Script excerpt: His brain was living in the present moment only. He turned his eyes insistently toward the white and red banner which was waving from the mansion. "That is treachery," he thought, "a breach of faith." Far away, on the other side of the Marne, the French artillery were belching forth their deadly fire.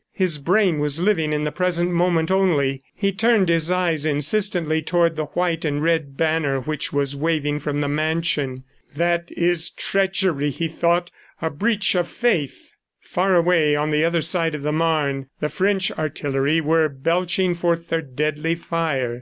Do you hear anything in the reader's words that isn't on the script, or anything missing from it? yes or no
no